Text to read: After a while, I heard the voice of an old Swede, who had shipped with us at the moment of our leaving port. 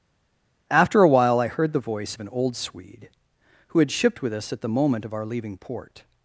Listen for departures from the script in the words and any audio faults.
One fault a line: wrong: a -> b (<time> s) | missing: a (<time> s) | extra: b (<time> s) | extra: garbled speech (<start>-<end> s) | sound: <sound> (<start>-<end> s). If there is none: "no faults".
no faults